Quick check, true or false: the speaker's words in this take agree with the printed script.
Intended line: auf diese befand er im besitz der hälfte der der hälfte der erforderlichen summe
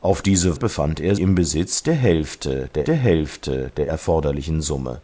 true